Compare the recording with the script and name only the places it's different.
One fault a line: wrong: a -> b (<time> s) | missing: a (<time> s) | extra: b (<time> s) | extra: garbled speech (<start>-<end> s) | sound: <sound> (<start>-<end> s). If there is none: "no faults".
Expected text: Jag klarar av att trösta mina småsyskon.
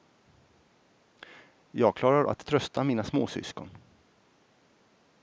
missing: av (2.2 s)